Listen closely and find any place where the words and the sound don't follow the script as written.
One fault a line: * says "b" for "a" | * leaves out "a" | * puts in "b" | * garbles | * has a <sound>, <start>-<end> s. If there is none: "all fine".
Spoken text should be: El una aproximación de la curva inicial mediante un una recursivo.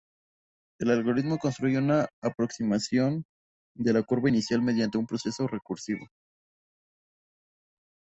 * puts in "algoritmo construye"
* says "proceso" for "una"